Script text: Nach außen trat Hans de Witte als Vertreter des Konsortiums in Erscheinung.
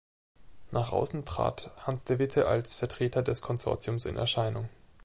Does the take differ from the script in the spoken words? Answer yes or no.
no